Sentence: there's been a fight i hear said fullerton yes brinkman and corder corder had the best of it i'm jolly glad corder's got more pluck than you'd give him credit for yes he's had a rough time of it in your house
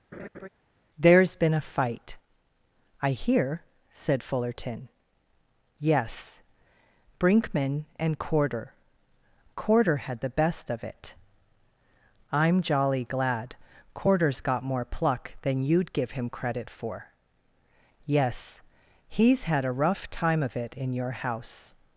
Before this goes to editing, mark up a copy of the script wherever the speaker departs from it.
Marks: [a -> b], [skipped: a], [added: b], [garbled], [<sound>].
[laugh] there's been a fight i hear said fullerton yes brinkman and corder corder had the best of it i'm jolly glad corder's got more pluck than you'd give him credit for yes he's had a rough time of it in your house